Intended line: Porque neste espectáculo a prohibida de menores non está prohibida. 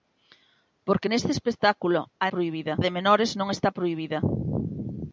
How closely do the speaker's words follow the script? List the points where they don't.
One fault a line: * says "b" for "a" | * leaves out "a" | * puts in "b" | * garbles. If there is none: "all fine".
all fine